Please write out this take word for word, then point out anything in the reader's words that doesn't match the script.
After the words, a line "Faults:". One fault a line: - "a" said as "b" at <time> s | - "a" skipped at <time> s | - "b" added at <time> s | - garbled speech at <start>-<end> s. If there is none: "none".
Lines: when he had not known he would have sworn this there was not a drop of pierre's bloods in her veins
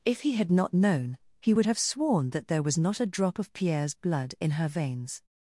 if he had not known he would have sworn that there was not a drop of pierre's blood in her veins
Faults:
- "when" said as "if" at 0.0 s
- "this" said as "that" at 2.3 s
- "bloods" said as "blood" at 3.9 s